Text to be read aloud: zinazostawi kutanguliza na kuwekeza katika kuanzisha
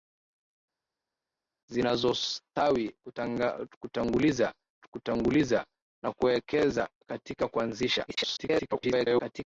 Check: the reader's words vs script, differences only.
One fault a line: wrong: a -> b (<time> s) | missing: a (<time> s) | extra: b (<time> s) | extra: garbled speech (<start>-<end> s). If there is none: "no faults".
extra: kutanguliza (4.9 s)
extra: garbled speech (8.1-9.5 s)